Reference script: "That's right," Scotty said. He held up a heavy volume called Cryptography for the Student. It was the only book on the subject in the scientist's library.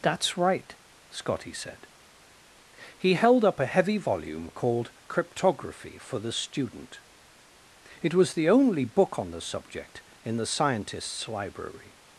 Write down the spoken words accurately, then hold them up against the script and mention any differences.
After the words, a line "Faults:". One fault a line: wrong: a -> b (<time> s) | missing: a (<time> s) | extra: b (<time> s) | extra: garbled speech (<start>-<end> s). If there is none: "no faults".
"That's right," Scotty said. He held up a heavy volume called Cryptography for the Student. It was the only book on the subject in the scientist's library.
Faults:
no faults